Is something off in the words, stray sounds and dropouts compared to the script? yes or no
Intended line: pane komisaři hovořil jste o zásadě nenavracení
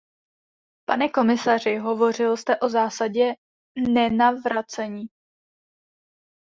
no